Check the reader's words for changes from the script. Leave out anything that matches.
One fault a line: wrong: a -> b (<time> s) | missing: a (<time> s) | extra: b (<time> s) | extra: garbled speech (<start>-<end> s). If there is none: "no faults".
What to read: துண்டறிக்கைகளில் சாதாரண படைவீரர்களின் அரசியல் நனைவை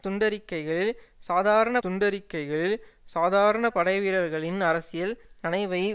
extra: துண்டறிக்கைகளில் சாதாரண (1.8 s)